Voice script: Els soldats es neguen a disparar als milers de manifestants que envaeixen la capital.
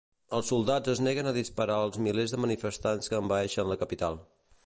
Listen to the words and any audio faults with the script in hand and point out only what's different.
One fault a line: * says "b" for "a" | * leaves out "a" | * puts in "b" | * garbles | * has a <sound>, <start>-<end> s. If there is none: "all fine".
all fine